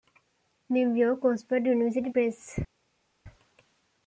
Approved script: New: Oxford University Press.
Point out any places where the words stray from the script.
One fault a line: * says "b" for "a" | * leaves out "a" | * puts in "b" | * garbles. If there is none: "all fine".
* puts in "York"